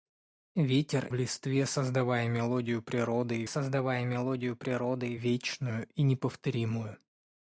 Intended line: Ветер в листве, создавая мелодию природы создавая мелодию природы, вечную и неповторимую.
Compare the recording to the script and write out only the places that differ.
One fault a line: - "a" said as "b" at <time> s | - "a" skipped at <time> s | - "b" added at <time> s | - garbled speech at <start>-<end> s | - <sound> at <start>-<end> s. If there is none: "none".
none